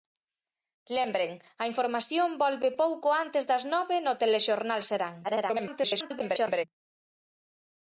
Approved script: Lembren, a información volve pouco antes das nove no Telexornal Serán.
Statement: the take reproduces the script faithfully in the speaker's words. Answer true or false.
false